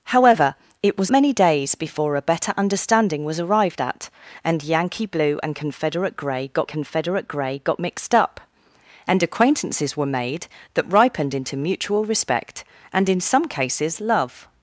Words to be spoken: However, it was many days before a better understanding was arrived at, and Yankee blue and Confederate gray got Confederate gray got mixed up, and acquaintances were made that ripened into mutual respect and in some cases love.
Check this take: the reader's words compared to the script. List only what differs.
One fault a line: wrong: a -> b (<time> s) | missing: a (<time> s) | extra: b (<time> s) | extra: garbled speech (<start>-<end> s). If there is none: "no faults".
no faults